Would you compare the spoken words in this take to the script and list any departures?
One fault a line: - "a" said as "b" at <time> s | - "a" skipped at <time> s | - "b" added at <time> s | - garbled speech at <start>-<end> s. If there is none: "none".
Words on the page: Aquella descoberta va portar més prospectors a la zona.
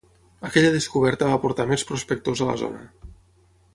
none